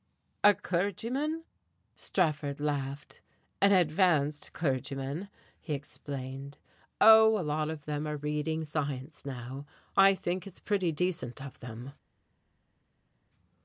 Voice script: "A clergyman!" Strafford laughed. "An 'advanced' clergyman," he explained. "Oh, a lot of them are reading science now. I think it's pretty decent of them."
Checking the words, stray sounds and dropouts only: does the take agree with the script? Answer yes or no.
yes